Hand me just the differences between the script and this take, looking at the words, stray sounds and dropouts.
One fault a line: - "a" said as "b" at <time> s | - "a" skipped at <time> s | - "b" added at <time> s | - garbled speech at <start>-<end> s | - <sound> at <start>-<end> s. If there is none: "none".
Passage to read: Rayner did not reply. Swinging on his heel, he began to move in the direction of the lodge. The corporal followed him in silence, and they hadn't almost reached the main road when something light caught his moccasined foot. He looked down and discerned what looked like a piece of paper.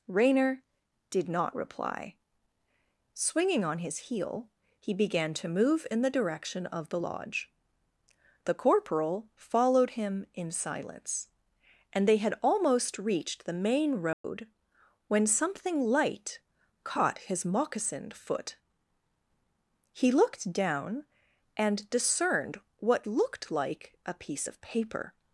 - "hadn't" said as "had" at 12.2 s
- dropout at 14.1-14.2 s